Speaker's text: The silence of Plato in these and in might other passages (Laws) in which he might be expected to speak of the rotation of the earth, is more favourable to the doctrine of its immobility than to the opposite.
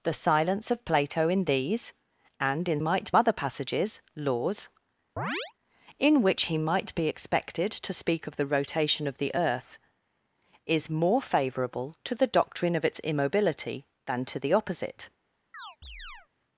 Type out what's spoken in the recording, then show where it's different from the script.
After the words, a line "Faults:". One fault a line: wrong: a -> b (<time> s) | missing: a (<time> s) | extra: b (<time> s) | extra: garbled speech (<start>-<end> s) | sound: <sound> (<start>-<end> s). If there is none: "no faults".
The silence of Plato in these and in might other passages (Laws) in which he might be expected to speak of the rotation of the earth, is more favourable to the doctrine of its immobility than to the opposite.
Faults:
sound: chirp (5.2-5.5 s)
sound: chirp (15.5-16.3 s)